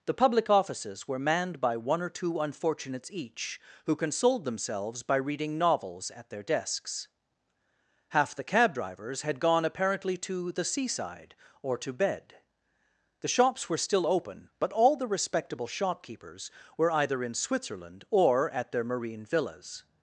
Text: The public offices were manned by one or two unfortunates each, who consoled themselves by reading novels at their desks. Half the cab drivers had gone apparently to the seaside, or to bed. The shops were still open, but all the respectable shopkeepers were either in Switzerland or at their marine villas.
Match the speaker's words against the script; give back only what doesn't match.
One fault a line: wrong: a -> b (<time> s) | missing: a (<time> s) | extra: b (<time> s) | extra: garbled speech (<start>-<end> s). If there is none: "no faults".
no faults